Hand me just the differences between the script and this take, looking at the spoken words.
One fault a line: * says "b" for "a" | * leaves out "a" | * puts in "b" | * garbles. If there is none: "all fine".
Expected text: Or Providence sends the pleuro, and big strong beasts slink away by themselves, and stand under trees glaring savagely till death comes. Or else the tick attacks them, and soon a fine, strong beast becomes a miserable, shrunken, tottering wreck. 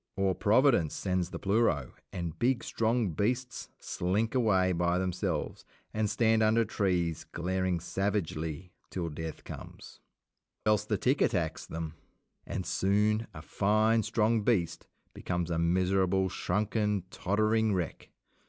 * leaves out "Or"